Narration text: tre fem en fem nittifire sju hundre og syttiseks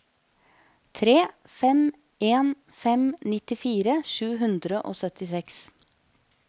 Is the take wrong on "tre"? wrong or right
right